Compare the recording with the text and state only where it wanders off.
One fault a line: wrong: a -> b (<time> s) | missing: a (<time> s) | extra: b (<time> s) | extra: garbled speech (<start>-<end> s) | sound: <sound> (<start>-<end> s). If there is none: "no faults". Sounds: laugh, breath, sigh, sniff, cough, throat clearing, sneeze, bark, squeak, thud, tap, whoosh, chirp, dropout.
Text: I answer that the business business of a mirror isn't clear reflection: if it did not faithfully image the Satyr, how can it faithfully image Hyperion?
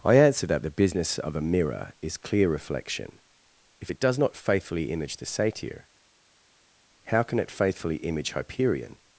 missing: business (1.2 s)
wrong: isn't -> is (2.0 s)
wrong: did -> does (4.0 s)